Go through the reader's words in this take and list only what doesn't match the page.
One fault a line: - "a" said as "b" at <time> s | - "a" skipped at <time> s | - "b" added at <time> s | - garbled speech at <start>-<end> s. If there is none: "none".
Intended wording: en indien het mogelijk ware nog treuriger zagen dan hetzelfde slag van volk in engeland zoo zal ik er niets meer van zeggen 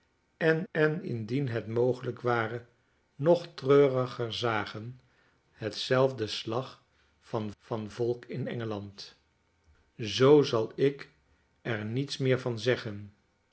- "en" added at 0.7 s
- "dan" skipped at 5.0 s
- "van" added at 7.6 s